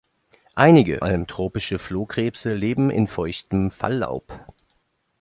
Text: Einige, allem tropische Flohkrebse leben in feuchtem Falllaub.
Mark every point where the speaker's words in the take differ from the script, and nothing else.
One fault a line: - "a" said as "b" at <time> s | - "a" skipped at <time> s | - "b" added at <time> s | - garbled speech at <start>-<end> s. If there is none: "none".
none